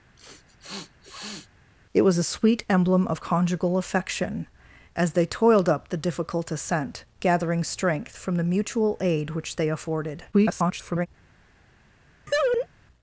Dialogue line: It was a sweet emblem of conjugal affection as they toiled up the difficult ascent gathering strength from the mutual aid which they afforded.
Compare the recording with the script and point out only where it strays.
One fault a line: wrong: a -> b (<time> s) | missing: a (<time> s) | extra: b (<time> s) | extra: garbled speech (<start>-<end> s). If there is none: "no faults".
extra: garbled speech (10.3-11.1 s)